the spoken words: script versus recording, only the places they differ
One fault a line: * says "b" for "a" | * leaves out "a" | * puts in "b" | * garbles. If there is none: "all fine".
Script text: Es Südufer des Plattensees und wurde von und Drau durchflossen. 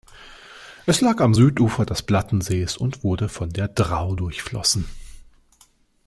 * puts in "lag am"
* says "der" for "und"